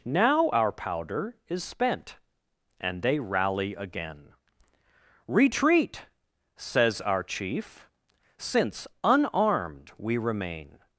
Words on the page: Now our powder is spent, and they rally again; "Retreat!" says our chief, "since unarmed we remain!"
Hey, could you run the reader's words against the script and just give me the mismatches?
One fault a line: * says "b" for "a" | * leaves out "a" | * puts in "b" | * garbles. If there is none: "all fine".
all fine